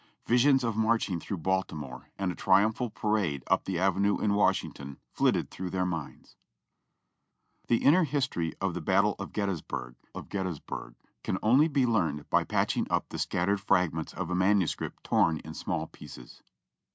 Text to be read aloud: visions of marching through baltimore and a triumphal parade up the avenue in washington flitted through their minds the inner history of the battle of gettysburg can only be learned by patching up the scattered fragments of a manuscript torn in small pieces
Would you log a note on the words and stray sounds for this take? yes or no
yes